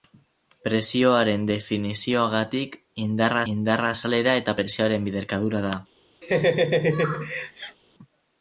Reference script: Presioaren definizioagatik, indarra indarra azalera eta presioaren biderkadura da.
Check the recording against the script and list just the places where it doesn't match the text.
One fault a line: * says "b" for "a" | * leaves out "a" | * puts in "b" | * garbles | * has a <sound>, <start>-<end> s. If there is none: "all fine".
* has a laugh, 6.2-7.8 s